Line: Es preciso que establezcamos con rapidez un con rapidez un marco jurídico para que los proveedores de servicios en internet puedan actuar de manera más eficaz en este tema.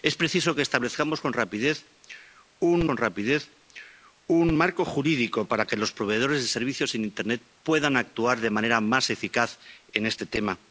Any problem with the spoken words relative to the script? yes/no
no